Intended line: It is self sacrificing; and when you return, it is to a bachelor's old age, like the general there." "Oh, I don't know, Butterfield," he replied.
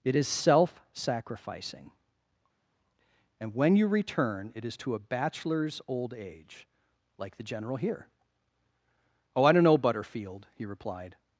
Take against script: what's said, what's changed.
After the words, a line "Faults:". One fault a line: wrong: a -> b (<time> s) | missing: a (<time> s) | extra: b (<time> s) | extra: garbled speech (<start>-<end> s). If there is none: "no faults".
It is self sacrificing; and when you return, it is to a bachelor's old age, like the general here." "Oh, I don't know, Butterfield," he replied.
Faults:
wrong: there -> here (7.8 s)